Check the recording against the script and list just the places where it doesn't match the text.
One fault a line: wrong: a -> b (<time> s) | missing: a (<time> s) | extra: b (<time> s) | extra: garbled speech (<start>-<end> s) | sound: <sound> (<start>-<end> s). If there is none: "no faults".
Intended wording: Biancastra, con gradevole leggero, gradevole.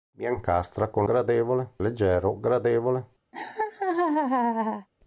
sound: laugh (3.3-4.9 s)